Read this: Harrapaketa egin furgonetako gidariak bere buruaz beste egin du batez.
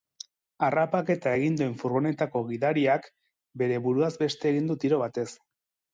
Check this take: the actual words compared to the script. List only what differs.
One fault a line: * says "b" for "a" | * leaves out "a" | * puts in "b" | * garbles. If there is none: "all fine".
* puts in "duen"
* puts in "tiro"